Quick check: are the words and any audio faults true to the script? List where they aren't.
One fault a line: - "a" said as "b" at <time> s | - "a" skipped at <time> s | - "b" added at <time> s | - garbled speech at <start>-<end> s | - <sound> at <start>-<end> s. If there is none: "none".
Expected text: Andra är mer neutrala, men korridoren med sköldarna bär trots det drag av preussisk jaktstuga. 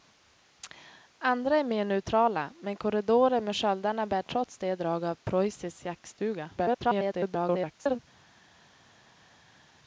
- garbled speech at 6.6-8.0 s